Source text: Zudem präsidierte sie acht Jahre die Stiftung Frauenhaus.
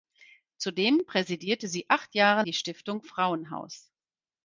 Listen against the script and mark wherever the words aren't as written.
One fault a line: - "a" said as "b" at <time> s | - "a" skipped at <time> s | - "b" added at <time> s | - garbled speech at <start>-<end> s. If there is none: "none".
none